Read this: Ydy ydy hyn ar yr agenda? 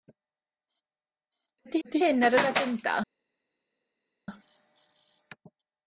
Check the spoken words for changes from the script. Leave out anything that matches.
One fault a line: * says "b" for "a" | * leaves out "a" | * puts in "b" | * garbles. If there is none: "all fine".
all fine